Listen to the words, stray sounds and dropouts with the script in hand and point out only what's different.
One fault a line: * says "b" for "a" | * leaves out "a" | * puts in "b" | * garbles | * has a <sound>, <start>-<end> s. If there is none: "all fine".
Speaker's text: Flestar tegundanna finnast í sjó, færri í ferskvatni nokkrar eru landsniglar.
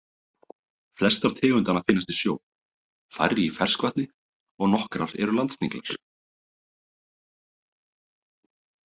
* puts in "og"